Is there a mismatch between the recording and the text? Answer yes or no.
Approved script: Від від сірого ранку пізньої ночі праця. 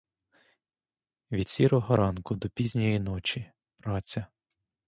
yes